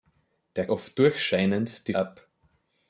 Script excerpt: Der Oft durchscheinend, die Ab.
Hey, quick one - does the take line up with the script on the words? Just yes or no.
yes